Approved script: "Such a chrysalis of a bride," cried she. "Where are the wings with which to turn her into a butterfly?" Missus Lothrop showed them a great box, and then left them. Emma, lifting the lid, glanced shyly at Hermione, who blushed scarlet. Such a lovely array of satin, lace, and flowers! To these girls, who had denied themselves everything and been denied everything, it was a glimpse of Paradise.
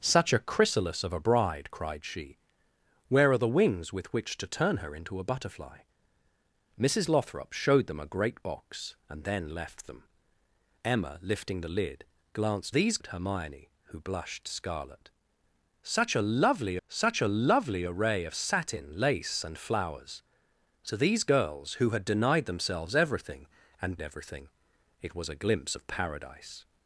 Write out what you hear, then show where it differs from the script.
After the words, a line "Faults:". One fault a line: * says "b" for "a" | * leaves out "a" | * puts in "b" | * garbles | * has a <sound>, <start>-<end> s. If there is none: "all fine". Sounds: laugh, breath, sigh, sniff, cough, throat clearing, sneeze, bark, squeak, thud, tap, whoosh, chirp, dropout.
"Such a chrysalis of a bride," cried she. "Where are the wings with which to turn her into a butterfly?" Missus Lothrop showed them a great box, and then left them. Emma, lifting the lid, glanced these at Hermione, who blushed scarlet. Such a lovely such a lovely array of satin, lace, and flowers! To these girls, who had denied themselves everything and everything, it was a glimpse of Paradise.
Faults:
* says "these" for "shyly"
* puts in "such a lovely"
* leaves out "been denied"